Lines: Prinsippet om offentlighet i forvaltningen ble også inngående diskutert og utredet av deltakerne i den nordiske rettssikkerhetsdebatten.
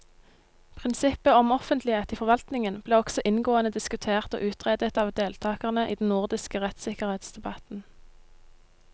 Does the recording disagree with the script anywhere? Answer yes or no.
no